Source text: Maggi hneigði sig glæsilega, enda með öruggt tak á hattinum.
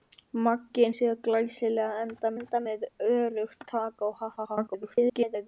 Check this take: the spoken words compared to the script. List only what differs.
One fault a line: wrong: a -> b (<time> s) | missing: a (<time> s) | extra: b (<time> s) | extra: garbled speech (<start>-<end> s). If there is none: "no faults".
missing: hneigði (0.9 s)
extra: enda (2.4 s)
extra: garbled speech (4.4-5.5 s)